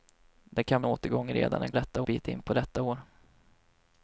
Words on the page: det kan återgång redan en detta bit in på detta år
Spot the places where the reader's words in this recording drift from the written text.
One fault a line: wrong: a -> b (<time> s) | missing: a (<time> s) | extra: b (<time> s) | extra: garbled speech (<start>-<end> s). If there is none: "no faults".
no faults